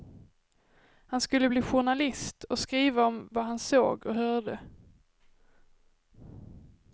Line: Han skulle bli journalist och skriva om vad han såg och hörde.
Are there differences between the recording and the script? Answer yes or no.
no